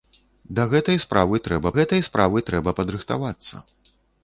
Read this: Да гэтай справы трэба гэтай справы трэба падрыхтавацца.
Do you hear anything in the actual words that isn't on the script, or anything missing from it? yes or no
no